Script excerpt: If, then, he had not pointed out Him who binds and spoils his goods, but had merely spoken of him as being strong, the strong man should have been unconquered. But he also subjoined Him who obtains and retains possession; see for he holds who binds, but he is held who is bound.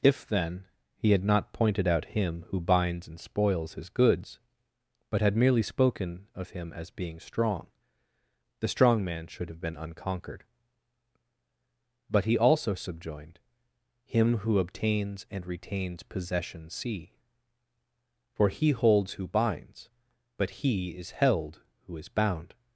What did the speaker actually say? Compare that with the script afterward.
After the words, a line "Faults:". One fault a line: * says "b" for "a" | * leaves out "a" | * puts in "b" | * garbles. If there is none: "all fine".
If, then, he had not pointed out Him who binds and spoils his goods, but had merely spoken of him as being strong, the strong man should have been unconquered. But he also subjoined Him who obtains and retains possession; see for he holds who binds, but he is held who is bound.
Faults:
all fine